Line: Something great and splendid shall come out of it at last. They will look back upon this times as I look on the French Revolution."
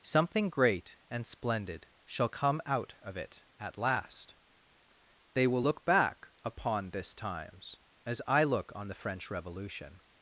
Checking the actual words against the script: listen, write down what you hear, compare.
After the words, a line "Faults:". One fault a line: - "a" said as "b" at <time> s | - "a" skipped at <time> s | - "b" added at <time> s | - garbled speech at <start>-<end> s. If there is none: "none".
Something great and splendid shall come out of it at last. They will look back upon this times as I look on the French Revolution."
Faults:
none